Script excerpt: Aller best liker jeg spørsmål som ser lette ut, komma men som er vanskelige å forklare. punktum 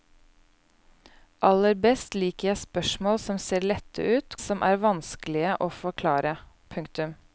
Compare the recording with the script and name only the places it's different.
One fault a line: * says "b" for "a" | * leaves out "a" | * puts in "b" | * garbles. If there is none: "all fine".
* leaves out "komma men"